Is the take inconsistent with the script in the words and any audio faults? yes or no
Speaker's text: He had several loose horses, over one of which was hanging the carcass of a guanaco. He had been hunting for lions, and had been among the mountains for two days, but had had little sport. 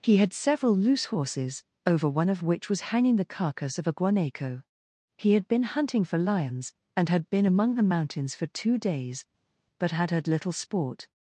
no